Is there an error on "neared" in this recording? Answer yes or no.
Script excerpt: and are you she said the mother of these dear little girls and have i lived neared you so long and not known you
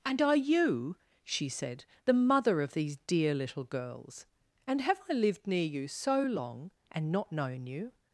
yes